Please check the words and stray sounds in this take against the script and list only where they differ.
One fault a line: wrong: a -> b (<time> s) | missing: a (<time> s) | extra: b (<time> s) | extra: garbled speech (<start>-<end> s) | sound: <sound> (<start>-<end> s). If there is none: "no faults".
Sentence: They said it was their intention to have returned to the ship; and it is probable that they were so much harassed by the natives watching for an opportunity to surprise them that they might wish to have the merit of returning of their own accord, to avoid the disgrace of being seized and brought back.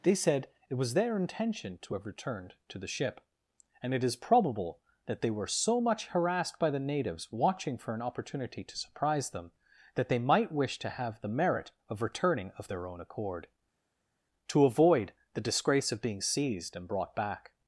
no faults